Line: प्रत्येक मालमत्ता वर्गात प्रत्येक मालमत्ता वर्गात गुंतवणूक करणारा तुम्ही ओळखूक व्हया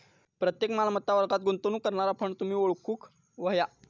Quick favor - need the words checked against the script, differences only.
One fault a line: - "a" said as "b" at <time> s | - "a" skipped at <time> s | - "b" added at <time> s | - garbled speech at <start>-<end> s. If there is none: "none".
- "प्रत्येक मालमत्ता वर्गात" skipped at 1.4 s
- "फंड" added at 2.2 s